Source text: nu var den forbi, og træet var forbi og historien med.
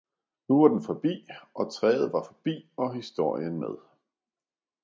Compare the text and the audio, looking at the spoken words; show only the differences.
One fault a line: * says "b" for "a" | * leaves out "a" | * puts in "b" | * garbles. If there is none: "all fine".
all fine